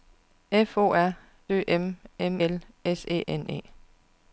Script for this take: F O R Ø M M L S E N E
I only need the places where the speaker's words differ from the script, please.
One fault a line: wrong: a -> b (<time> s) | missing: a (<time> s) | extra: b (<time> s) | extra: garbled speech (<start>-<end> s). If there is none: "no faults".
no faults